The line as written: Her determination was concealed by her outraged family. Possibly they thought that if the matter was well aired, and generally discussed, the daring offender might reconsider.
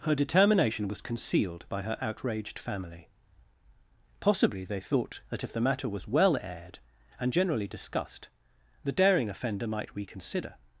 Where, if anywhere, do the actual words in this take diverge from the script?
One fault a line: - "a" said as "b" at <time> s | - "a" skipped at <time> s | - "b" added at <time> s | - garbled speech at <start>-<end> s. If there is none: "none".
none